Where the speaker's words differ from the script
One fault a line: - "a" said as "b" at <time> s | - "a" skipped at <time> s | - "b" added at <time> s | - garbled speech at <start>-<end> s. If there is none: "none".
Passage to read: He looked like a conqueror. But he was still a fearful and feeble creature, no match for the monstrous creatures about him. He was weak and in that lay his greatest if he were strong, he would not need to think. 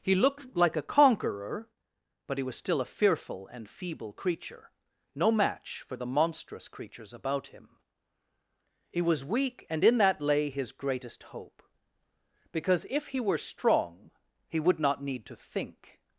- "hope Because" added at 11.2 s